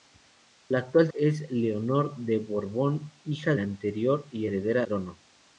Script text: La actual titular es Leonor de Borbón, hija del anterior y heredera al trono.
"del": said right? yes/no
no